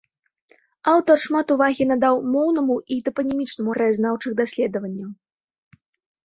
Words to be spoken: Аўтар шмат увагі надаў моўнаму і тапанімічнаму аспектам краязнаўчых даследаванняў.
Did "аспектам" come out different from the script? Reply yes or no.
yes